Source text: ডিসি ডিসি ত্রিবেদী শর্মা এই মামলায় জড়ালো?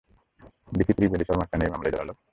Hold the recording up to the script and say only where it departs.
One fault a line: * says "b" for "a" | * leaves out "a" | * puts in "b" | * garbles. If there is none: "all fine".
* leaves out "ডিসি"
* puts in "কেন"